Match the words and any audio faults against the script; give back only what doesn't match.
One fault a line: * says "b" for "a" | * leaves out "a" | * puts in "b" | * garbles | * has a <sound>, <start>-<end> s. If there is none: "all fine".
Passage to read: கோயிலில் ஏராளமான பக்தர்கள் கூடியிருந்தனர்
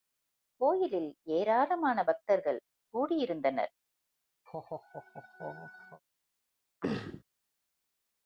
* has a laugh, 4.5-6.0 s
* has a throat clearing, 6.8-7.2 s